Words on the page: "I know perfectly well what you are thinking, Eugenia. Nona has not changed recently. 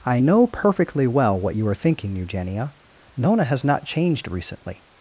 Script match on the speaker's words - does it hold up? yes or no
yes